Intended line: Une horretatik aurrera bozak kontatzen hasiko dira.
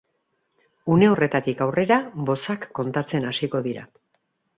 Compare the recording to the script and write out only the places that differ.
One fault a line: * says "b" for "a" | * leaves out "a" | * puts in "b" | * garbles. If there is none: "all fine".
all fine